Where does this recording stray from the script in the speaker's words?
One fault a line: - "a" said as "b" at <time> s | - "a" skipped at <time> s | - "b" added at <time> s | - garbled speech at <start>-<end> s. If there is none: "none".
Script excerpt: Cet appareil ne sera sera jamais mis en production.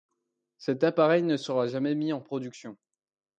- "sera" skipped at 1.7 s